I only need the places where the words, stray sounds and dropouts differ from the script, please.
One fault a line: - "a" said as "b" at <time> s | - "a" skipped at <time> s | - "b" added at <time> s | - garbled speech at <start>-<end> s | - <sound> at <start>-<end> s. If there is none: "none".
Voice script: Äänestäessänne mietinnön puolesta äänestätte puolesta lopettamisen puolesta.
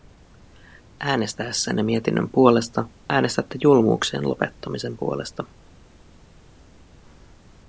- "puolesta" said as "julmuuksien" at 3.6 s